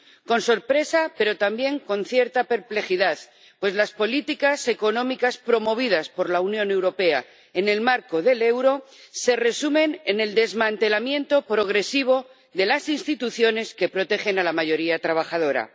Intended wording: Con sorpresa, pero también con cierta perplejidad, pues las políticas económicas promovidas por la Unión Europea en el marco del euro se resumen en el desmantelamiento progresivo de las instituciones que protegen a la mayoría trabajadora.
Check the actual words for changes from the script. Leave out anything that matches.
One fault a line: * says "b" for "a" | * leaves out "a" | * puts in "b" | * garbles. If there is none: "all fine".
all fine